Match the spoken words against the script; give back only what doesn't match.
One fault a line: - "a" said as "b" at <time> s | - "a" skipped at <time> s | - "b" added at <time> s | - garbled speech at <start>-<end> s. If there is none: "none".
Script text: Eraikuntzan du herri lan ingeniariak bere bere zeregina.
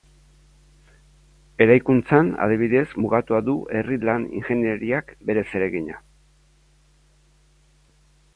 - "adibidez mugatua" added at 2.5 s
- "bere" skipped at 5.4 s